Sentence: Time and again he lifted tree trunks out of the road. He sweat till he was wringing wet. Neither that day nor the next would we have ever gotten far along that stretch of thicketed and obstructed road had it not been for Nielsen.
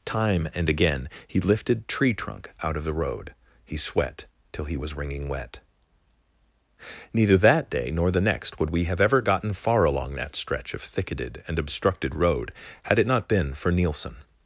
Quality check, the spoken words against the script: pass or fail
fail